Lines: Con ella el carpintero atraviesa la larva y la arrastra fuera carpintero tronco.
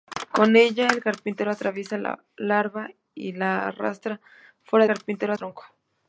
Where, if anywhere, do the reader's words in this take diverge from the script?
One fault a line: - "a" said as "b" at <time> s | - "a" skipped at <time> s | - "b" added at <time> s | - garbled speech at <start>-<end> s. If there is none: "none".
none